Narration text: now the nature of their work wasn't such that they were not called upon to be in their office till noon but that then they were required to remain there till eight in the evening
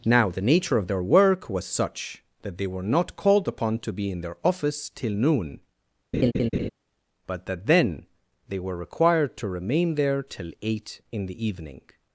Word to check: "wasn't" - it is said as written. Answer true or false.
false